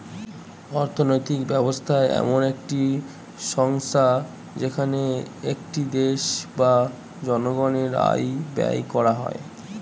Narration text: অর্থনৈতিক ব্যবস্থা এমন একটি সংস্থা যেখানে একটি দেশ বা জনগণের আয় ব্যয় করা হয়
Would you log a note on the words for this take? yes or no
no